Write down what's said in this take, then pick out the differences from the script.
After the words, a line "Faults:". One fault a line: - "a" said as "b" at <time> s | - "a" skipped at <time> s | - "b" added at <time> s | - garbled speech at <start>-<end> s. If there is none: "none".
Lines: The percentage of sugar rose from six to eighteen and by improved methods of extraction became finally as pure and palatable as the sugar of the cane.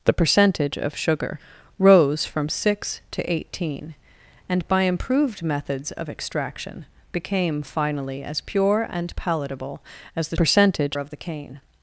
The percentage of sugar rose from six to eighteen and by improved methods of extraction became finally as pure and palatable as the percentage of the cane.
Faults:
- "sugar" said as "percentage" at 10.3 s